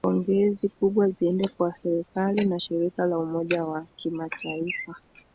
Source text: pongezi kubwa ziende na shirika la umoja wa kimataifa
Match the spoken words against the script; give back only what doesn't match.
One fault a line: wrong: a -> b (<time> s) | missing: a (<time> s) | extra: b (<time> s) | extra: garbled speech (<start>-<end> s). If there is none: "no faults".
extra: kwa serikali (1.5 s)